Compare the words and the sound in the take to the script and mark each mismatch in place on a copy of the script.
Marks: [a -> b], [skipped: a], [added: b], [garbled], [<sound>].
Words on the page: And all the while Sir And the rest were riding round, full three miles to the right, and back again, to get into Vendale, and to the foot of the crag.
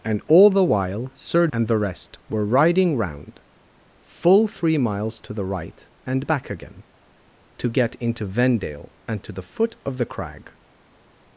And all the while Sir And the rest were riding round, full three miles to the right, and back again, to get into Vendale, and to the foot of the crag.